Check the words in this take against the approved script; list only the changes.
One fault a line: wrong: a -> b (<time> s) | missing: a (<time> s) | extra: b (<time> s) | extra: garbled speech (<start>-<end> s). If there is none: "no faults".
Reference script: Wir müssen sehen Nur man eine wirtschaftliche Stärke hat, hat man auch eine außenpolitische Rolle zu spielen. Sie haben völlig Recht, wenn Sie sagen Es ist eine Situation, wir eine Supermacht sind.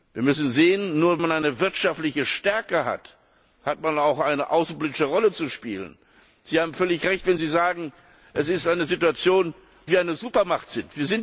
no faults